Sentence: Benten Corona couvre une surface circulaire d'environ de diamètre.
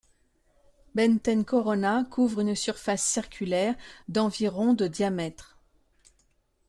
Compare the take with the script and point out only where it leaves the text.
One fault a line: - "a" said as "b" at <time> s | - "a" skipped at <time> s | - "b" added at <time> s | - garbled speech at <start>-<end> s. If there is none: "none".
none